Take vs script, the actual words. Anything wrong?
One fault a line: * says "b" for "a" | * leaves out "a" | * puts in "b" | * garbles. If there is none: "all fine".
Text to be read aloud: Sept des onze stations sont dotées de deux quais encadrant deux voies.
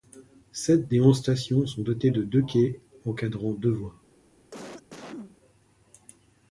all fine